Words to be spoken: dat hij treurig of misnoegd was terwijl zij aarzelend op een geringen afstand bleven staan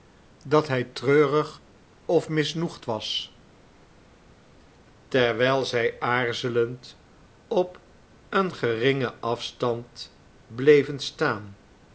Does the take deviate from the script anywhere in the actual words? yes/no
no